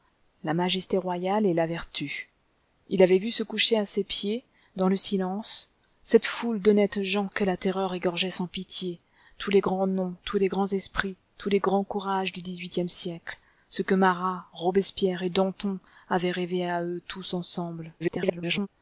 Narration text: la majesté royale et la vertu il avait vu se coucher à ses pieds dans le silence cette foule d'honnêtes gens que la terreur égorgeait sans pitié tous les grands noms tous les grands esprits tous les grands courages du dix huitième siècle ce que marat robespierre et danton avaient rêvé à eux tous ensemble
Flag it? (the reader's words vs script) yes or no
yes